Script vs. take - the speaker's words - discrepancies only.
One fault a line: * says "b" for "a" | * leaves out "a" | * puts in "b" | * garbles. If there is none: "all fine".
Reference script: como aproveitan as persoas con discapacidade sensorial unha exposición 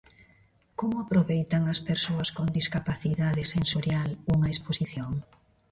all fine